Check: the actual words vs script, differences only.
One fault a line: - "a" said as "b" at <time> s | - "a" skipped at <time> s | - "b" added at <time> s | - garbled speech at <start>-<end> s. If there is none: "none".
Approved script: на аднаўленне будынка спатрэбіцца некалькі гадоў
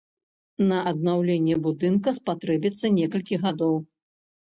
none